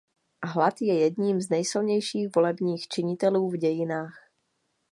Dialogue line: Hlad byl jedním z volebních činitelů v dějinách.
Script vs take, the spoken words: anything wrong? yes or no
yes